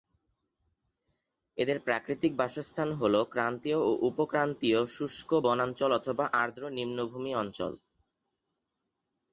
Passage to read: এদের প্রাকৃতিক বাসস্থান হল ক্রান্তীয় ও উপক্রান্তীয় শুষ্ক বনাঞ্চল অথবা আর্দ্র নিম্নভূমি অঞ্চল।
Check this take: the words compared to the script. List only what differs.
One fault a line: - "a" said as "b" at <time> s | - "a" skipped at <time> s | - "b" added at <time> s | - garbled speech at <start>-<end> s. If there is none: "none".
none